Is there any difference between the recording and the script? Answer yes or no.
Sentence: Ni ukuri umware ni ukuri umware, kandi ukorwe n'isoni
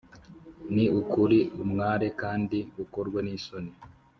yes